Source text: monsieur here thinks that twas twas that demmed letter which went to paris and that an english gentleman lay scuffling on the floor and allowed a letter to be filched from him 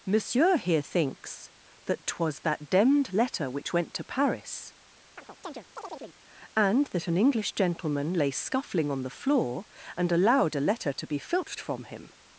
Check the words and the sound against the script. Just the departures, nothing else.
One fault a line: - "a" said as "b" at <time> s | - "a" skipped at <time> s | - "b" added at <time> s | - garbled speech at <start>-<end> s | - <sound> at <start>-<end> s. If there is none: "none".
- "twas" skipped at 2.4 s
- chirp at 5.2-6.2 s